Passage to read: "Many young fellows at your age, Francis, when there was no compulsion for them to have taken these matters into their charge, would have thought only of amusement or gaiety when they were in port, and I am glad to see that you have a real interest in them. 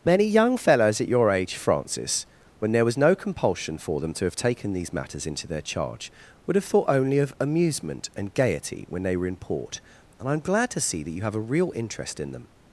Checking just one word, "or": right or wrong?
wrong